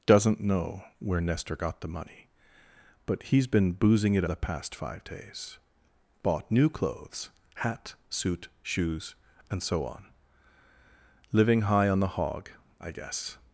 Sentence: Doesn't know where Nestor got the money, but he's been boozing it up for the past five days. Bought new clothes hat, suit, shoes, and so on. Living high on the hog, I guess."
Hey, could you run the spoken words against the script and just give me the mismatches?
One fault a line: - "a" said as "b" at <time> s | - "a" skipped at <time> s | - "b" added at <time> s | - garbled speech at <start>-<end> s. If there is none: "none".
- "up for" skipped at 4.2 s